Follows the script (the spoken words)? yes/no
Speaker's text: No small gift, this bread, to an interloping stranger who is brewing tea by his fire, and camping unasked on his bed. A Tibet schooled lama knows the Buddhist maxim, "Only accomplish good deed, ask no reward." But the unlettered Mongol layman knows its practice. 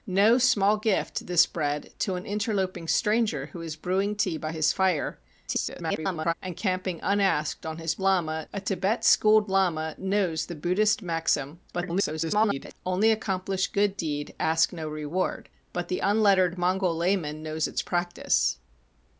no